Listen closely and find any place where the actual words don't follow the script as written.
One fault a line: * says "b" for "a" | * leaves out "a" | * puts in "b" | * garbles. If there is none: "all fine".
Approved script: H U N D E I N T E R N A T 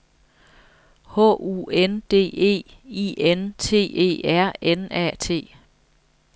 all fine